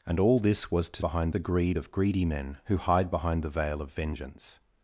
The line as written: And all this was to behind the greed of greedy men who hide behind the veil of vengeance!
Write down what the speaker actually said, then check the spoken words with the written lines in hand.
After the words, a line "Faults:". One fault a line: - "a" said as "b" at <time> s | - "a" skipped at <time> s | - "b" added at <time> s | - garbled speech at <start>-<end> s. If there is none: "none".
And all this was to behind the greed of greedy men who hide behind the veil of vengeance!
Faults:
none